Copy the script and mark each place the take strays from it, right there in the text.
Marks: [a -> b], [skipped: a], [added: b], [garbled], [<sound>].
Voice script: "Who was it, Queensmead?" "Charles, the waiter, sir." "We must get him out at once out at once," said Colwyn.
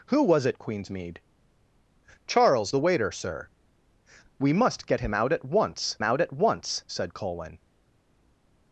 "Who was it, Queensmead?" "Charles, the waiter, sir." "We must get him out at once out at once," said Colwyn.